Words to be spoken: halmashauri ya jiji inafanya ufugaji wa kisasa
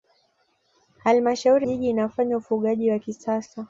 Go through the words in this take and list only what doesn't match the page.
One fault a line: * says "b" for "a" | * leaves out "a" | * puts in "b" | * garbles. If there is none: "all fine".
* leaves out "ya"